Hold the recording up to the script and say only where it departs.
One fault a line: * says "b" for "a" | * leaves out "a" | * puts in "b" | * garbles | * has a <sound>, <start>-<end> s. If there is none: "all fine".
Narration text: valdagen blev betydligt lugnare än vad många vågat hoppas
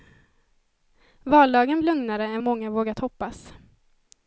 * leaves out "blev betydligt"
* leaves out "vad"